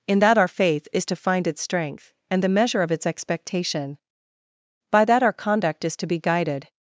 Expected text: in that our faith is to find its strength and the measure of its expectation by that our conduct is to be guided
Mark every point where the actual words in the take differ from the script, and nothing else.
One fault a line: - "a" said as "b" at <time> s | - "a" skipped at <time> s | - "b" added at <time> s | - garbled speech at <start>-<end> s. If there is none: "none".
none